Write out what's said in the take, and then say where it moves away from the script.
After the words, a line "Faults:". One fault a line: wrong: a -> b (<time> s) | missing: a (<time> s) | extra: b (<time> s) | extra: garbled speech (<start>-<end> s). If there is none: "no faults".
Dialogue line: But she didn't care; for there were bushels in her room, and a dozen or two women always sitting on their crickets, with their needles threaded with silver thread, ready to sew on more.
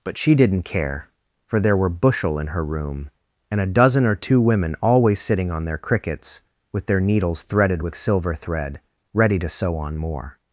But she didn't care; for there were bushel in her room, and a dozen or two women always sitting on their crickets, with their needles threaded with silver thread, ready to sew on more.
Faults:
wrong: bushels -> bushel (1.9 s)